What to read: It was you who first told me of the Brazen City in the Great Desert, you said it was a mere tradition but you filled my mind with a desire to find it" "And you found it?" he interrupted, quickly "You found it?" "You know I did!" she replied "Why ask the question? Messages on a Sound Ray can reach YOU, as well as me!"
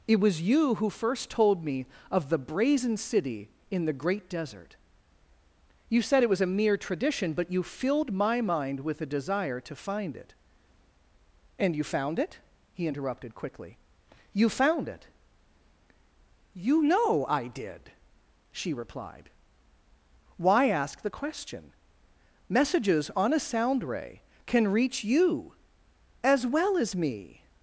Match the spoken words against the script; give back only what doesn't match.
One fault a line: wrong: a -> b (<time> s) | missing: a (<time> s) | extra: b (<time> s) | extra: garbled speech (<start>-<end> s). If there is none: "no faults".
no faults